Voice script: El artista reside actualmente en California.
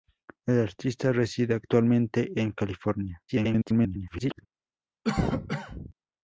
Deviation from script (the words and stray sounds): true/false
true